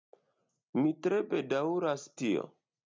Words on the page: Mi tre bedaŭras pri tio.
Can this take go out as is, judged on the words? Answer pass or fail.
fail